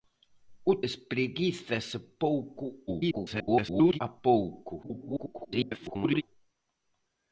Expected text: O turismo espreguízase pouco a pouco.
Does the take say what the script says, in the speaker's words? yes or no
no